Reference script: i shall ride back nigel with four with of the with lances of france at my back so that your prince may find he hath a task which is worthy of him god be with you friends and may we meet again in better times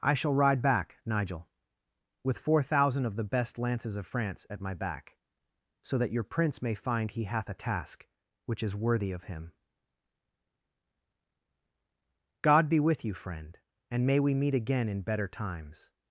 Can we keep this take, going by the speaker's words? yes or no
no